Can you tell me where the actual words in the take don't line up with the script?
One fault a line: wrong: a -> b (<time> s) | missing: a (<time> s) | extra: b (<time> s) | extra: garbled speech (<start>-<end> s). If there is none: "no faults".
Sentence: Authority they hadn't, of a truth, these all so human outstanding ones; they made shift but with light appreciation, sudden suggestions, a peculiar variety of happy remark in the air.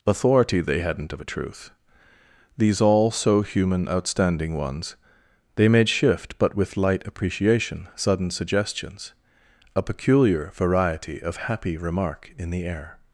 no faults